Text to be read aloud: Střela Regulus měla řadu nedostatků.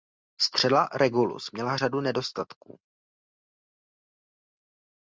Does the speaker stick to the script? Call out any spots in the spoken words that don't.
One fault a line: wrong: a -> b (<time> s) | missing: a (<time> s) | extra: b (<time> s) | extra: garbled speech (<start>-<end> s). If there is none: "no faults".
no faults